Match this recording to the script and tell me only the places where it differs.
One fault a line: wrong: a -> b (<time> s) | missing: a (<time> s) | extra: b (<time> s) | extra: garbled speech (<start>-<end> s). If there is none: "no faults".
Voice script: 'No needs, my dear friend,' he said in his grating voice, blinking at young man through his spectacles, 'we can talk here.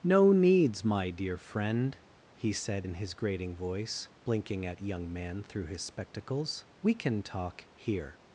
no faults